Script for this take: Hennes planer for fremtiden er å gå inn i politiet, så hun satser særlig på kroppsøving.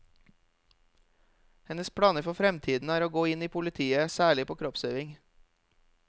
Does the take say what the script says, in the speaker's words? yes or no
no